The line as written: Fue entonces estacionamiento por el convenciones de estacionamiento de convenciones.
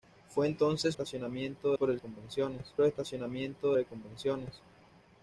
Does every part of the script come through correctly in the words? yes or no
yes